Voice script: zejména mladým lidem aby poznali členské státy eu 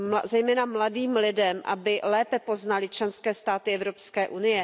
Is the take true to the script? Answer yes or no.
no